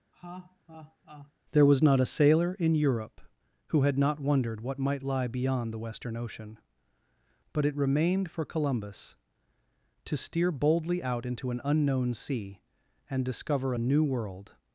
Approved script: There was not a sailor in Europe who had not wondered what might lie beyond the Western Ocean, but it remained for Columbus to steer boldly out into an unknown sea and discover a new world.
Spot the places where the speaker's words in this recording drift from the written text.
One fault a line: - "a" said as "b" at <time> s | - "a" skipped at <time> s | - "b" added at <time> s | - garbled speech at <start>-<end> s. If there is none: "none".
none